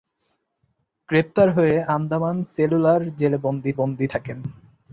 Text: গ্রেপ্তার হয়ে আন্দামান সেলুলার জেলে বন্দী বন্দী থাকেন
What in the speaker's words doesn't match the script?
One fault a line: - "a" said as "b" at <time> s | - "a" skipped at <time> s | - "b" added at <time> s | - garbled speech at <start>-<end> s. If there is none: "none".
none